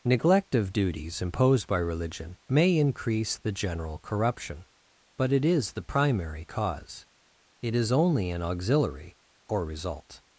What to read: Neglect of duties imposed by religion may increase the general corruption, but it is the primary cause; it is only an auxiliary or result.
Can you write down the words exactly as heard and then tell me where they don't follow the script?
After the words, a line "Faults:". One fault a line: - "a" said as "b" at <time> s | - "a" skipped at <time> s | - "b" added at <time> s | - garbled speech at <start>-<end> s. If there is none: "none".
Neglect of duties imposed by religion may increase the general corruption, but it is the primary cause; it is only an auxiliary or result.
Faults:
none